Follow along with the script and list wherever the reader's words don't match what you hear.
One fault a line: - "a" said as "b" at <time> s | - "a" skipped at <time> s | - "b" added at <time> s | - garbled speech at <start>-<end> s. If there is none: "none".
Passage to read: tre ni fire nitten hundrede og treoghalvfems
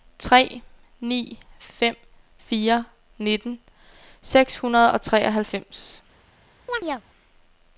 - "fem" added at 1.6 s
- "seks" added at 4.2 s